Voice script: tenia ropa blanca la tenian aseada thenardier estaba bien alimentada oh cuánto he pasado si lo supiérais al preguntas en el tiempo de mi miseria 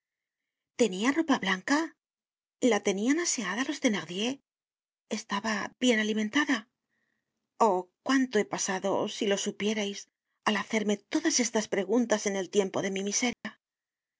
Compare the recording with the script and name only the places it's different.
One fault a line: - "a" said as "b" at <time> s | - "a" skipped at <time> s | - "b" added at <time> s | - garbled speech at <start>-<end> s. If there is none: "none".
- "los" added at 3.7 s
- "hacerme todas estas" added at 10.6 s